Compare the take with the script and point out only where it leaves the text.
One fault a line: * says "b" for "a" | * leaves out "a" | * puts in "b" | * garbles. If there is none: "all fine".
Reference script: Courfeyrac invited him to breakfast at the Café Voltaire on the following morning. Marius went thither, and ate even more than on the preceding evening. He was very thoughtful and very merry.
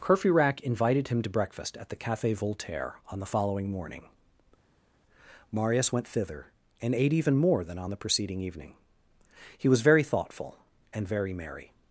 all fine